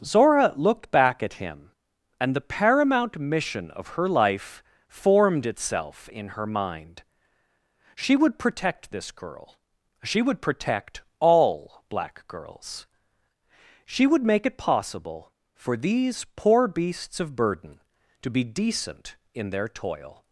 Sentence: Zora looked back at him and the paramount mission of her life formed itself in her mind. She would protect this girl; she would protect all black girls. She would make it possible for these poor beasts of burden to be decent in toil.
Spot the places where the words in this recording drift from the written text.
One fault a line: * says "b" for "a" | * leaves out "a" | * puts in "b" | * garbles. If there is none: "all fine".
* puts in "their"